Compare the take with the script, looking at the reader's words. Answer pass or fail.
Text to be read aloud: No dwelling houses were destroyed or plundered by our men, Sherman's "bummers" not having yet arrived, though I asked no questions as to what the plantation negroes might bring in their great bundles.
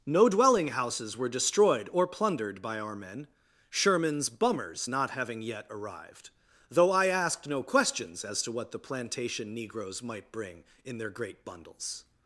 pass